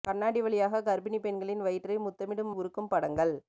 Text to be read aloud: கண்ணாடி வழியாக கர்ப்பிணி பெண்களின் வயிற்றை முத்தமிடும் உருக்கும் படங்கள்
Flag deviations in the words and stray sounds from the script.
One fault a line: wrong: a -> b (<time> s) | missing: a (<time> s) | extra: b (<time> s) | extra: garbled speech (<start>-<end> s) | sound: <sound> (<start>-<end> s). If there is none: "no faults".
no faults